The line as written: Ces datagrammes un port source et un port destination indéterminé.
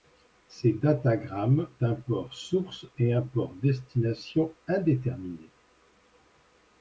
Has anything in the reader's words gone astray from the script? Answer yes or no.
no